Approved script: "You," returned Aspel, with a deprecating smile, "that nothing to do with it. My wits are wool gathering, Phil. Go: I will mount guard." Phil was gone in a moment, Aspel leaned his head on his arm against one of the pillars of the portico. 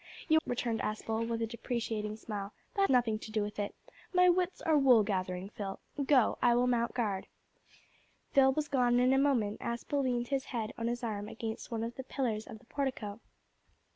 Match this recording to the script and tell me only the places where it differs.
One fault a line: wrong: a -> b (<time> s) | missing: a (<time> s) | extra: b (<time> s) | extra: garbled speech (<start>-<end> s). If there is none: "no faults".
no faults